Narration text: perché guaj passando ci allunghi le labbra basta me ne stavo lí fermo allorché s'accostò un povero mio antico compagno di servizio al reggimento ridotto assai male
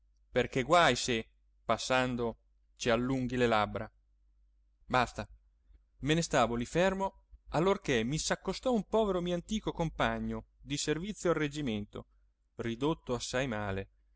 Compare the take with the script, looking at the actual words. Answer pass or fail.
fail